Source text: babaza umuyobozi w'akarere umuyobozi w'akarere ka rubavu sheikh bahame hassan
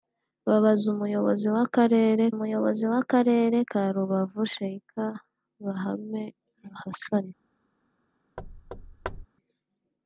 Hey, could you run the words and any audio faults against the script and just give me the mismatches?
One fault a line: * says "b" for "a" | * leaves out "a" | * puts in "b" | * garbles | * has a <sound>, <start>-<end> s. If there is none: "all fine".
* has a thud, 8.4-9.3 s